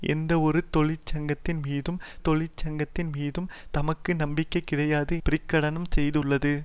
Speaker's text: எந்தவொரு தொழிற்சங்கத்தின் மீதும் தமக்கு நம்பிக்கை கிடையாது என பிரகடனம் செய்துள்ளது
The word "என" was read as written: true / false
false